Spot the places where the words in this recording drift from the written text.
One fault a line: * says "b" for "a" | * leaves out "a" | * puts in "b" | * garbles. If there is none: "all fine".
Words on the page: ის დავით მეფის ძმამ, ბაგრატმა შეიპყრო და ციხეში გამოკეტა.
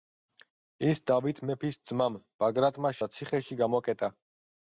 * leaves out "შეიპყრო"